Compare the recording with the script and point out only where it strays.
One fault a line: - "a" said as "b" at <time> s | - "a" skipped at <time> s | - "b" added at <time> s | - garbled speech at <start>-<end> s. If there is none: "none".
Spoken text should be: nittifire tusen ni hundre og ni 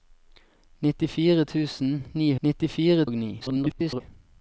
- "hundre" said as "nittifire" at 2.4 s
- garbled speech at 3.4-4.0 s